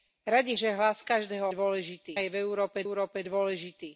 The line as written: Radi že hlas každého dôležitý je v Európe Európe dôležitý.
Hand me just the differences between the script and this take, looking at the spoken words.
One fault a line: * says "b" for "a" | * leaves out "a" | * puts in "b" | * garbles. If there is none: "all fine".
all fine